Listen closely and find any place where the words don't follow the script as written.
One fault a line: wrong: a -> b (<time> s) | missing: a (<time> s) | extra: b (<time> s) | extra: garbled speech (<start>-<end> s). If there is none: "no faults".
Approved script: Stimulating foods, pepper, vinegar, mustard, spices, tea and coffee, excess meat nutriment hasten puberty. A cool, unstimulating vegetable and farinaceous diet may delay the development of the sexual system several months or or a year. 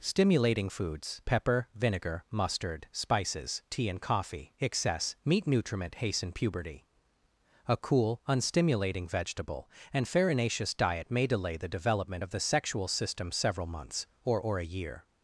no faults